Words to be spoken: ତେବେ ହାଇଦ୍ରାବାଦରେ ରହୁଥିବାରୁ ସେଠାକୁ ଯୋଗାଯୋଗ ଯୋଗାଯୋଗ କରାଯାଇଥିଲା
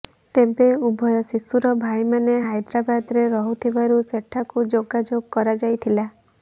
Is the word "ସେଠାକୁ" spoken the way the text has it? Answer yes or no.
yes